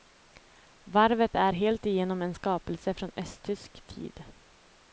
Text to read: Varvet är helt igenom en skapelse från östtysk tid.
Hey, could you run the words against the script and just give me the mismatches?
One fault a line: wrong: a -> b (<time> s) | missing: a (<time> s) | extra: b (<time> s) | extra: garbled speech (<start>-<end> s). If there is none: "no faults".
no faults